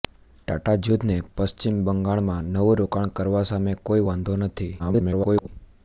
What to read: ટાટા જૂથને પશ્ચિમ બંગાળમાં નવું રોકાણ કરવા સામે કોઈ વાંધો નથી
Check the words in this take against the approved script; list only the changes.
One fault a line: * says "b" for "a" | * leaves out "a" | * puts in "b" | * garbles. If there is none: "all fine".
* garbles